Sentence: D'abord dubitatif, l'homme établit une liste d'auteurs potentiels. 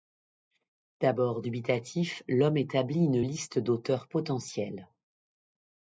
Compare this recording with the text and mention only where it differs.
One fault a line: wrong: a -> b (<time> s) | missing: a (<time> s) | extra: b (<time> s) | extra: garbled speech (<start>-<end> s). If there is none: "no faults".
no faults